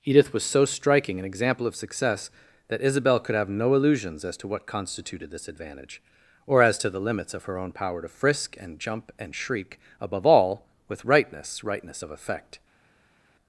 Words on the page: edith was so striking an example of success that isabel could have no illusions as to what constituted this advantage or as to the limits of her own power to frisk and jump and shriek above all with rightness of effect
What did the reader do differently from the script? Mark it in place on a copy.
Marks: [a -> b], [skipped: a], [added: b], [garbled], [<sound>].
edith was so striking an example of success that isabel could have no illusions as to what constituted this advantage or as to the limits of her own power to frisk and jump and shriek above all with rightness [added: rightness] of effect